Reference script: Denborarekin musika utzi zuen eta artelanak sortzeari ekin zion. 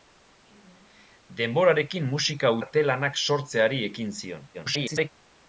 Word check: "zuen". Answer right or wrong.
wrong